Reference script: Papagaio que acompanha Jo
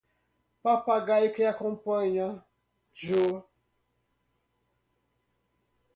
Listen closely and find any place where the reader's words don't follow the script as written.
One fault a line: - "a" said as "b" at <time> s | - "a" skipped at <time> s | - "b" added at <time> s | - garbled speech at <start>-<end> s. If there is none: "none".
none